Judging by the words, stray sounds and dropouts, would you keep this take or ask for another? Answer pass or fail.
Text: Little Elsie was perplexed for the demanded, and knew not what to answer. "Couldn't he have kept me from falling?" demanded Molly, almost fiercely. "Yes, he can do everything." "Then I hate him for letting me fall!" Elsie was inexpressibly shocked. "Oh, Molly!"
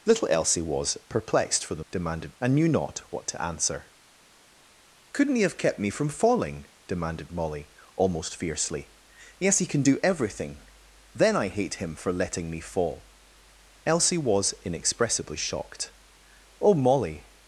pass